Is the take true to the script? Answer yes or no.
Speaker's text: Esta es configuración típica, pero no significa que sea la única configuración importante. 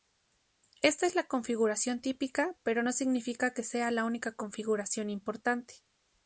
no